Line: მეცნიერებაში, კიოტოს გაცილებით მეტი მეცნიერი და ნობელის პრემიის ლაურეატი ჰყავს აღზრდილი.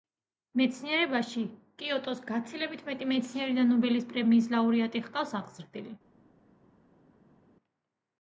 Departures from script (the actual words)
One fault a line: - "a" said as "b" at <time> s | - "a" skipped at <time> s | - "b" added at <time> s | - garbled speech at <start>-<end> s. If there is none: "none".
none